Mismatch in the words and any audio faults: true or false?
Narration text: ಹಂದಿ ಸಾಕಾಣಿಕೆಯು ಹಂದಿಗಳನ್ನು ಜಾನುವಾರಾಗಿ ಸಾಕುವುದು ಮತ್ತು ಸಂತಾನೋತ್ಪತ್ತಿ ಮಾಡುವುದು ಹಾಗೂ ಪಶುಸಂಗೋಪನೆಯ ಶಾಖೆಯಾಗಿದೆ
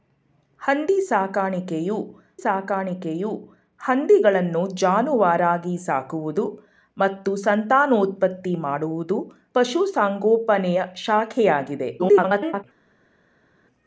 true